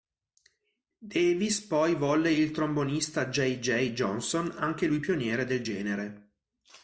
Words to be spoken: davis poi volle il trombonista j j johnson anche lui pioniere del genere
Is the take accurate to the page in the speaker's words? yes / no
yes